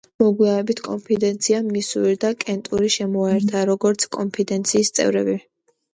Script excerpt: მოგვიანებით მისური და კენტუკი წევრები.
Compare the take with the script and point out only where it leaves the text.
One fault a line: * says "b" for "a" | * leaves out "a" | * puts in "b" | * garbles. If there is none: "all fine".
* puts in "კონფედერაციამ"
* puts in "შემოიერთა როგორც კონფედერაციის"